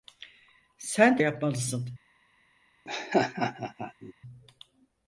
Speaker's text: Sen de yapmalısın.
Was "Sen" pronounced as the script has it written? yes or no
yes